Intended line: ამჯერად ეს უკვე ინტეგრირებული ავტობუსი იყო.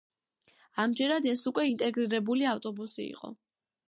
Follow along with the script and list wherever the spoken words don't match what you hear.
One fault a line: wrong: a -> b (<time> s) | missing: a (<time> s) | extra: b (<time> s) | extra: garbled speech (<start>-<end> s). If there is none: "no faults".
no faults